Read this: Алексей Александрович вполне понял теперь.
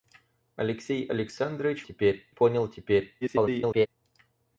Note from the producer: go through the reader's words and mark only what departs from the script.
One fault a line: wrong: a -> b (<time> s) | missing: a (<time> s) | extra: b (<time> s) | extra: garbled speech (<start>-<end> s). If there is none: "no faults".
wrong: вполне -> теперь (1.8 s)
extra: garbled speech (3.2-3.9 s)